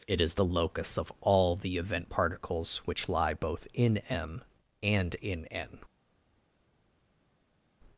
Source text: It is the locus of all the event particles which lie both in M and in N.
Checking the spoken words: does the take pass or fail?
pass